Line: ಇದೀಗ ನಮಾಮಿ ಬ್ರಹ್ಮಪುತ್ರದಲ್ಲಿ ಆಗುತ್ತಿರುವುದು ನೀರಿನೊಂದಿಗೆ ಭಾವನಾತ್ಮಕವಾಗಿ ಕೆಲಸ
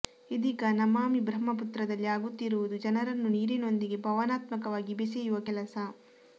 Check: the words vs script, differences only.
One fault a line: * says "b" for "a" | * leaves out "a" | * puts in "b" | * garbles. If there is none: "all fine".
* puts in "ಜನರನ್ನು"
* puts in "ಬೆಸೆಯುವ"